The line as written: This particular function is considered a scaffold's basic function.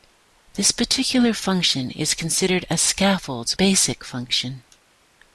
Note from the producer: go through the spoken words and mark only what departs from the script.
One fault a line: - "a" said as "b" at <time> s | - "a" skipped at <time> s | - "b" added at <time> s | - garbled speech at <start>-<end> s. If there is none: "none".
none